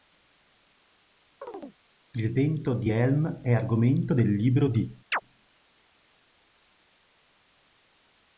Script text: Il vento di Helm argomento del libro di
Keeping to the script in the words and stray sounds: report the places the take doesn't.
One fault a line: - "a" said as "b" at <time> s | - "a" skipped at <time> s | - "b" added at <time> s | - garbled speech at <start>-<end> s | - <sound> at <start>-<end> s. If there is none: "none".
- chirp at 1.4-1.8 s
- "è" added at 3.4 s
- chirp at 5.1-5.2 s